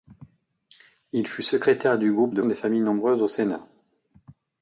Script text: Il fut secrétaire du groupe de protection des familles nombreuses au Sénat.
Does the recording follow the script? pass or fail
fail